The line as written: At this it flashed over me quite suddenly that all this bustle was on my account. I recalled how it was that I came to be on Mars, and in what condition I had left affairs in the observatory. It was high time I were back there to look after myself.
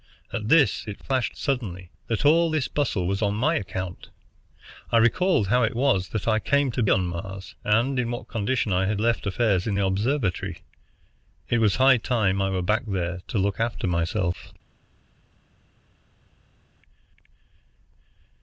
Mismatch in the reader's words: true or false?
true